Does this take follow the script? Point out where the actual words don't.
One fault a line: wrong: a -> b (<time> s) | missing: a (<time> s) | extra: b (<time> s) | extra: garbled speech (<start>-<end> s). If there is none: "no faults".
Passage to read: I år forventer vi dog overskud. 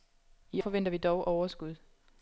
missing: år (0.6 s)